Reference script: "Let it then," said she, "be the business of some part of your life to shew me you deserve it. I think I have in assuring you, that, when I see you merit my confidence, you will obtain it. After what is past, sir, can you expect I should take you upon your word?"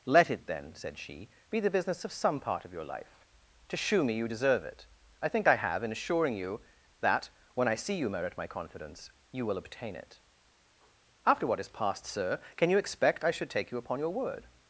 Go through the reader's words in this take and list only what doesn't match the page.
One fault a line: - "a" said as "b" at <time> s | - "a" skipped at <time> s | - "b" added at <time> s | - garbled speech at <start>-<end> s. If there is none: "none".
none